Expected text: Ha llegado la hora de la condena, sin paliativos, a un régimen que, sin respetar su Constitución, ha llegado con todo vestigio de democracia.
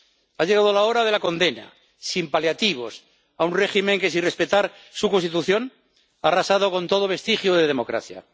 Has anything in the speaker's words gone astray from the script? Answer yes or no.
yes